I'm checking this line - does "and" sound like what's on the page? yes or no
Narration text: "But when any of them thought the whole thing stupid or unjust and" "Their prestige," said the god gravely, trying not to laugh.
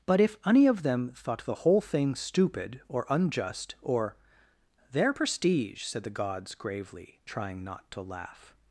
no